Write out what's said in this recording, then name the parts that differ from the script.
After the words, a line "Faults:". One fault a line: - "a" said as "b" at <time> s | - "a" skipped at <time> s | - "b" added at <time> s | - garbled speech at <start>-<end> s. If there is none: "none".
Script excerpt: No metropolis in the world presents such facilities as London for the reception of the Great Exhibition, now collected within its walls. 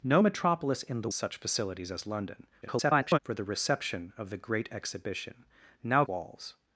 No metropolis in the such facilities as London [garbled] for the reception of the Great Exhibition, now walls.
Faults:
- "world presents" skipped at 1.1 s
- garbled speech at 2.6-3.2 s
- "collected within its" skipped at 6.0 s